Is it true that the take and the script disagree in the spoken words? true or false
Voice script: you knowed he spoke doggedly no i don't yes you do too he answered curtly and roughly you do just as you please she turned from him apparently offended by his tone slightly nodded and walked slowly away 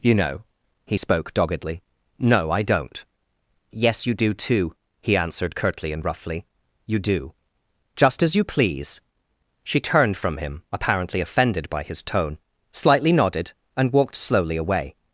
true